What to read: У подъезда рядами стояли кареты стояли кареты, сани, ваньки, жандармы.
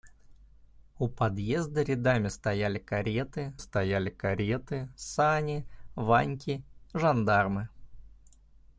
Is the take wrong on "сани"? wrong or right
right